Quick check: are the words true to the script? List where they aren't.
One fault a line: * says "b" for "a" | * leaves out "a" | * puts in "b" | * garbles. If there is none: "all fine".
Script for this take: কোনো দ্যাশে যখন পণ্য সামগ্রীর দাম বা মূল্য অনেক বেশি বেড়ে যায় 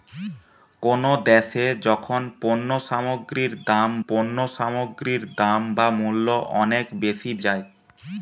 * puts in "পণ্য সামগ্রীর দাম"
* leaves out "বেড়ে"